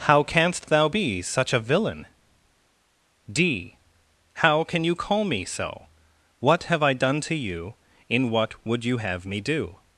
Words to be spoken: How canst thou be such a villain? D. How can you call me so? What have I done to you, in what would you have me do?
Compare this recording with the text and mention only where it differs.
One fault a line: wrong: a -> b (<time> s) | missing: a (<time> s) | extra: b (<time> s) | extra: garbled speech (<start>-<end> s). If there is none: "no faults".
no faults